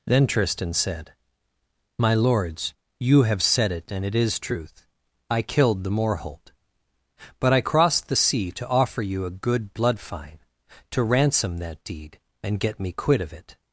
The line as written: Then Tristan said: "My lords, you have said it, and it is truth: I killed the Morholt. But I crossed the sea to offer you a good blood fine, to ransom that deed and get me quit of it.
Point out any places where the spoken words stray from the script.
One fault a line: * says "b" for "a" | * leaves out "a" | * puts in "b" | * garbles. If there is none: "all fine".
all fine